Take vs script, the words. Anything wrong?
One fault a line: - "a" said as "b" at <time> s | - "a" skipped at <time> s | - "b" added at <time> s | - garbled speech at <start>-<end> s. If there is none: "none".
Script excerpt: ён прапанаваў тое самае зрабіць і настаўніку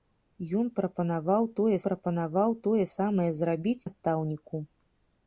- "прапанаваў тое" added at 1.9 s
- "і" skipped at 3.8 s